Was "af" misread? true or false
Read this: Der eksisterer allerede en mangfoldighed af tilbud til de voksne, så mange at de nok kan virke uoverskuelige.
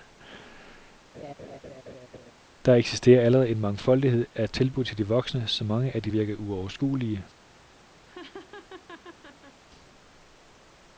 false